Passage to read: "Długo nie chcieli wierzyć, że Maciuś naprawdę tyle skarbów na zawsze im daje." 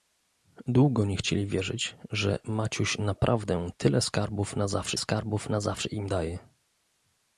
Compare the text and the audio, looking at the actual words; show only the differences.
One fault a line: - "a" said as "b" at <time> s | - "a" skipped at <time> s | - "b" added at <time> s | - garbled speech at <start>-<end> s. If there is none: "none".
- "skarbów na zawsze" added at 5.0 s